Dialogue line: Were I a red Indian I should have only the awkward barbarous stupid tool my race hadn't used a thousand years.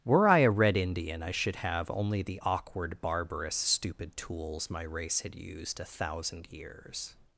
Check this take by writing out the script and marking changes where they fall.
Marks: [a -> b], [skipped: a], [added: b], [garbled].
Were I a red Indian I should have only the awkward barbarous stupid [tool -> tools] my race [hadn't -> had] used a thousand years.